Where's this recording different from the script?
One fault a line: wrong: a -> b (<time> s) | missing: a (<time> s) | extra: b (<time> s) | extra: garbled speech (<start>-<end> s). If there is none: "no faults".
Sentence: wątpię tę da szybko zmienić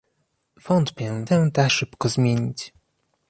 no faults